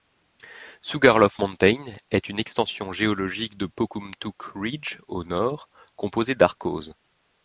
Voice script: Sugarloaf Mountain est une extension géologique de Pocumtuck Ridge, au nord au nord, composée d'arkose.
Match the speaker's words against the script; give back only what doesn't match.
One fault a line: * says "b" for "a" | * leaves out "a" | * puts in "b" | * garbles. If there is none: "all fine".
* leaves out "au nord"